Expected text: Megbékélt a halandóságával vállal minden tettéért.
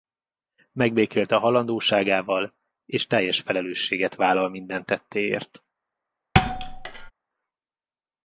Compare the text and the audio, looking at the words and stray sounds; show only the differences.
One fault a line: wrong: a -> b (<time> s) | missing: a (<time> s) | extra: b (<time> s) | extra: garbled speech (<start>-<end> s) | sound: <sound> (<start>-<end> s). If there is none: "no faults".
extra: és teljes felelősséget (2.9 s)
sound: thud (6.3-7.1 s)